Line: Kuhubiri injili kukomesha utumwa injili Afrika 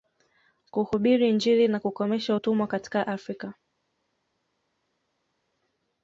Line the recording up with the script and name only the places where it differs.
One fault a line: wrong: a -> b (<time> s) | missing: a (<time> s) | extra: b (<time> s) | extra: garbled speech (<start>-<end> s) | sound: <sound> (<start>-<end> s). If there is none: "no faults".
extra: na (1.7 s)
wrong: injili -> katika (2.7 s)